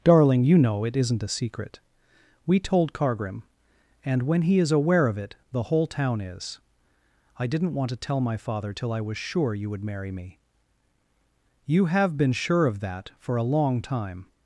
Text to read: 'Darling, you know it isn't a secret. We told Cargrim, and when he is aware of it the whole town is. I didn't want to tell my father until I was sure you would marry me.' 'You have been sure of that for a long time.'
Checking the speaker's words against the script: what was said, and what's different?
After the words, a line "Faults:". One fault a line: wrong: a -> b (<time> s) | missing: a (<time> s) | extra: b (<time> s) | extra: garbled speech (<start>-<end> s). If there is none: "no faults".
'Darling, you know it isn't a secret. We told Cargrim, and when he is aware of it the whole town is. I didn't want to tell my father till I was sure you would marry me.' 'You have been sure of that for a long time.'
Faults:
wrong: until -> till (8.7 s)